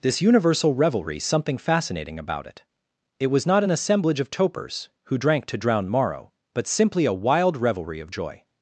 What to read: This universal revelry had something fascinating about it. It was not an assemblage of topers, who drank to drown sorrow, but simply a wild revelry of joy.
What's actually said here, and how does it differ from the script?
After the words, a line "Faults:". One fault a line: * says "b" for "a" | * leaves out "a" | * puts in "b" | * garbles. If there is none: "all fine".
This universal revelry something fascinating about it. It was not an assemblage of topers, who drank to drown morrow, but simply a wild revelry of joy.
Faults:
* leaves out "had"
* says "morrow" for "sorrow"